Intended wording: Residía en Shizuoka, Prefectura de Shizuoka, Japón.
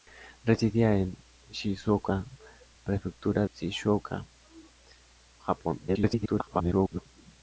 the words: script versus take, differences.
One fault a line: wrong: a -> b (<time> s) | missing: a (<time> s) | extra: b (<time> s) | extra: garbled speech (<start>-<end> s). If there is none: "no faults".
missing: de (3.5 s)
extra: garbled speech (5.9-7.1 s)